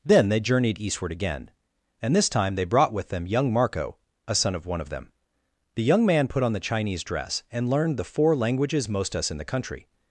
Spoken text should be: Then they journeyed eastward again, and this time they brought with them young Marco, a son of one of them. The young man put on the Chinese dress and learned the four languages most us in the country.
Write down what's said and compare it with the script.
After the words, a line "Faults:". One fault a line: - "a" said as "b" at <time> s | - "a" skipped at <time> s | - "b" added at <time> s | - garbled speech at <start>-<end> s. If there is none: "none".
Then they journeyed eastward again, and this time they brought with them young Marco, a son of one of them. The young man put on the Chinese dress and learned the four languages most us in the country.
Faults:
none